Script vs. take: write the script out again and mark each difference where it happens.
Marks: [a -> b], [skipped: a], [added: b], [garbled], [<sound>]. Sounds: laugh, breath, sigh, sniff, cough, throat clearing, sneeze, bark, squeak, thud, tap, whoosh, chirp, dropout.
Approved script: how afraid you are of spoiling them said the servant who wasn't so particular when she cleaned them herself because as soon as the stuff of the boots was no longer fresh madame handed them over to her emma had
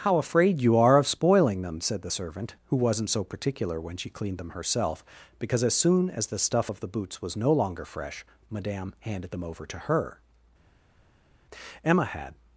how afraid you are of spoiling them said the servant who wasn't so particular when she cleaned them herself because as soon as the stuff of the boots was no longer fresh madame handed them over to her emma had